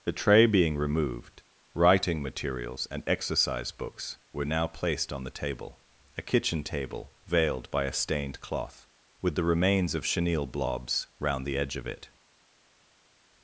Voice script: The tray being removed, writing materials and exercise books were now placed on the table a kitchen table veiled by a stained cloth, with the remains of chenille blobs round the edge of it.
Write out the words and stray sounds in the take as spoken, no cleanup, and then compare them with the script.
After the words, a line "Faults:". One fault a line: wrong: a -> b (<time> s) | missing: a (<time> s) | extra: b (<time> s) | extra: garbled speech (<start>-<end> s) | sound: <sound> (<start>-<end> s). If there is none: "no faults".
The tray being removed, writing materials and exercise books were now placed on the table a kitchen table veiled by a stained cloth, with the remains of chenille blobs round the edge of it.
Faults:
no faults